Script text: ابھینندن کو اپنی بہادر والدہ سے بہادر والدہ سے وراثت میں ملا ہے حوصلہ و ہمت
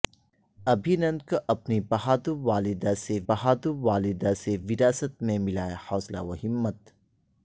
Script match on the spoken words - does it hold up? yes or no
yes